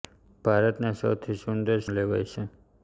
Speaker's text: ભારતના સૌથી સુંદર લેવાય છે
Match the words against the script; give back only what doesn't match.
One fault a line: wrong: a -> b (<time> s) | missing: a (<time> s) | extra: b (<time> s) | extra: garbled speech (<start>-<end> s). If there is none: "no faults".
no faults